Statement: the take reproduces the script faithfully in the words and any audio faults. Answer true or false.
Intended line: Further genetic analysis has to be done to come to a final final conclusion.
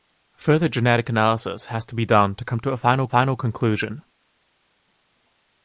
true